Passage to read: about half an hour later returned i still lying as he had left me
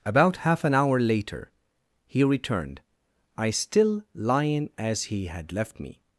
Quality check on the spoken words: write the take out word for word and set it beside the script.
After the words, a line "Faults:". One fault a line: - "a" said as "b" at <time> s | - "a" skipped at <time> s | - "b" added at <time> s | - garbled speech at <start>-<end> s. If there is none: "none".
about half an hour later he returned i still lying as he had left me
Faults:
- "he" added at 2.0 s